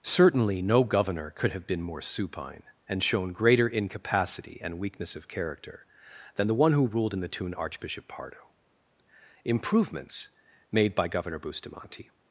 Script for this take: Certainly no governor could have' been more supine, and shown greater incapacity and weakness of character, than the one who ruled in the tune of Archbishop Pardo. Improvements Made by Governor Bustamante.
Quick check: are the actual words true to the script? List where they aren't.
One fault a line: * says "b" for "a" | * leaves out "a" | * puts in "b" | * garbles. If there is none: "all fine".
* leaves out "of"